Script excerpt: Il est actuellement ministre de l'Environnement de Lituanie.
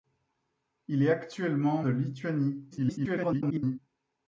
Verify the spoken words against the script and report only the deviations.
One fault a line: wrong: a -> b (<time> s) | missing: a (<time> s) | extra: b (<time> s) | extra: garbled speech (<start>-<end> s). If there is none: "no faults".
missing: ministre de l'Environnement (1.8 s)
extra: garbled speech (2.7-3.8 s)